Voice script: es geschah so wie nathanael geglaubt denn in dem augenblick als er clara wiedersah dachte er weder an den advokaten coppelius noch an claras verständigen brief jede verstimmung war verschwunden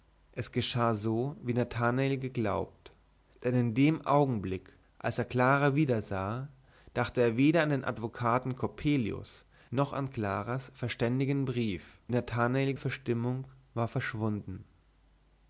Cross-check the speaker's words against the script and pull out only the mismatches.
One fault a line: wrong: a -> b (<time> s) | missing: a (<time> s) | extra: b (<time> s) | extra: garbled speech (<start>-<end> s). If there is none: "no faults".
wrong: jede -> nathanael (12.1 s)